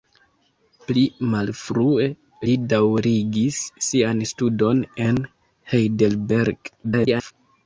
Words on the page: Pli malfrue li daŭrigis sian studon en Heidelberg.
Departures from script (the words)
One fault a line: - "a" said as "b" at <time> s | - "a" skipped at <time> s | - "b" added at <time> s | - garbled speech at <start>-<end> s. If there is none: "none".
- garbled speech at 6.8-7.3 s